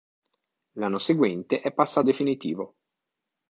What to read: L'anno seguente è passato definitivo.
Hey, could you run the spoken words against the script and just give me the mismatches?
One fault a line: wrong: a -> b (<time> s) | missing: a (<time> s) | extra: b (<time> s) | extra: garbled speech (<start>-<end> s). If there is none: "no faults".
no faults